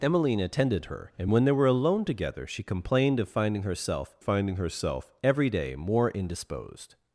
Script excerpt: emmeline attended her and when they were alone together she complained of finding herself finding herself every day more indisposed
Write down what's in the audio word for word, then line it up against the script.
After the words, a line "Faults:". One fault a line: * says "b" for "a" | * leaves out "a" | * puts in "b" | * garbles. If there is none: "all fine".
emmeline attended her and when they were alone together she complained of finding herself finding herself every day more indisposed
Faults:
all fine